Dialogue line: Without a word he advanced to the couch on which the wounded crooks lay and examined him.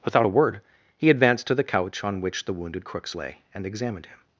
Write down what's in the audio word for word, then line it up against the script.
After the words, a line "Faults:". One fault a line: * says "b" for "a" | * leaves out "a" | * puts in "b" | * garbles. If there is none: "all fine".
Without a word he advanced to the couch on which the wounded crooks lay and examined him.
Faults:
all fine